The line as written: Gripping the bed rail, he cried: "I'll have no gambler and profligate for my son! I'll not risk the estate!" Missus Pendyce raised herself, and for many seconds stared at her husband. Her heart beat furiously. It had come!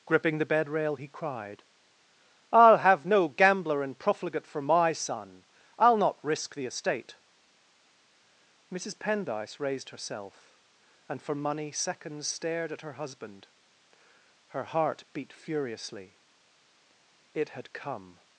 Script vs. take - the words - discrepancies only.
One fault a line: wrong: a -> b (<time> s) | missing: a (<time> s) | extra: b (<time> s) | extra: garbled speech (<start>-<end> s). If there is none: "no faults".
wrong: many -> money (11.3 s)